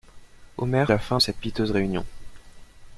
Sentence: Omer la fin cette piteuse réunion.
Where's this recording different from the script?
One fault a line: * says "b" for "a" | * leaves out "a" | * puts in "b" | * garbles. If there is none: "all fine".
all fine